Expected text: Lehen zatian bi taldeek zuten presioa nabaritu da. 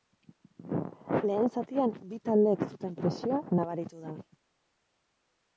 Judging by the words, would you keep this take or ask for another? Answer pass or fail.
pass